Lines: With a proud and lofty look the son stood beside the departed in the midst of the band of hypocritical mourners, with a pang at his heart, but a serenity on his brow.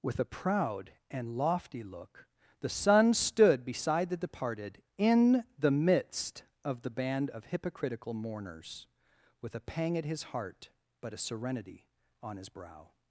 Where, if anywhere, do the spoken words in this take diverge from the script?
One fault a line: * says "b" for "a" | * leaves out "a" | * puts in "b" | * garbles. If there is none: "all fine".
all fine